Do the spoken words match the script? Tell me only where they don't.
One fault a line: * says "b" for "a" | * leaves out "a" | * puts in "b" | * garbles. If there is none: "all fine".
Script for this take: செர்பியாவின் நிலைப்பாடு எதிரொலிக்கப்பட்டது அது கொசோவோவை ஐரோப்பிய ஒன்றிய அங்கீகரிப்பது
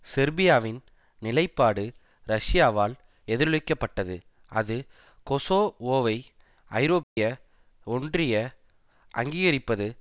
* puts in "ரஷ்யாவால்"